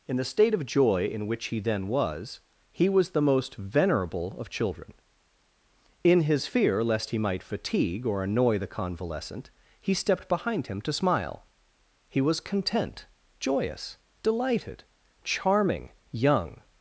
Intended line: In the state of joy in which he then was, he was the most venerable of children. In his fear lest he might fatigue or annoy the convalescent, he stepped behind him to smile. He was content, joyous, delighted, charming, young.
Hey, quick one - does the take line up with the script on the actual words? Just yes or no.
yes